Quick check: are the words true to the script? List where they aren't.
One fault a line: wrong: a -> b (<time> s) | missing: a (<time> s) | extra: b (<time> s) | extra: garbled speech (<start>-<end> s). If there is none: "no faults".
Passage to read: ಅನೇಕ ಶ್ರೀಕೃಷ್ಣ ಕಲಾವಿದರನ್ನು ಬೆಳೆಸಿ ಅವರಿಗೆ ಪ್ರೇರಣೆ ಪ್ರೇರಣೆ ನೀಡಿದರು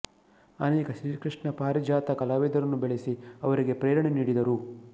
extra: ಪಾರಿಜಾತ (1.6 s)
missing: ಪ್ರೇರಣೆ (4.1 s)